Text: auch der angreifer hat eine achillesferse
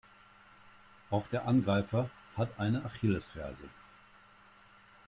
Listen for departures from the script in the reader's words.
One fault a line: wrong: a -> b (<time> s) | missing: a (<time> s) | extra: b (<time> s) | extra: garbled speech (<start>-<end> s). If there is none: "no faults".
no faults